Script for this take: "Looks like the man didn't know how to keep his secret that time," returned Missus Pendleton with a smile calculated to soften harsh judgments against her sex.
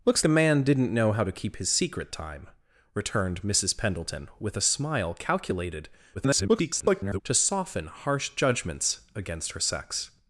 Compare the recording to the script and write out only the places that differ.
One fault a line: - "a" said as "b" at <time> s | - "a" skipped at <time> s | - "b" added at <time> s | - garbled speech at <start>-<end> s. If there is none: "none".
- "like" skipped at 0.2 s
- "that" skipped at 2.1 s
- garbled speech at 6.1-7.2 s